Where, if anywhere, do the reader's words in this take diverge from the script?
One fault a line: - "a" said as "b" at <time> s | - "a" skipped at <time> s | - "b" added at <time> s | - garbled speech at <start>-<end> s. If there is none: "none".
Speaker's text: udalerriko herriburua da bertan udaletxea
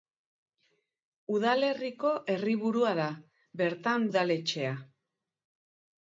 none